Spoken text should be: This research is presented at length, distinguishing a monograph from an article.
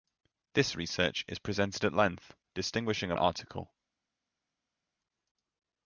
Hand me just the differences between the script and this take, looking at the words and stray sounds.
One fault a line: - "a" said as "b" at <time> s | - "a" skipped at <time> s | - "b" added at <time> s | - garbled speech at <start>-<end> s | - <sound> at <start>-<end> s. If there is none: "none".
- "monograph from an" skipped at 3.1 s